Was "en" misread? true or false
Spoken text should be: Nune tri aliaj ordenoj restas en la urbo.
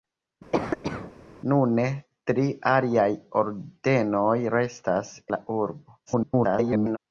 true